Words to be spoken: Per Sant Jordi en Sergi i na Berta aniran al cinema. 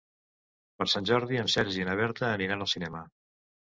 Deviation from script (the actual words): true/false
false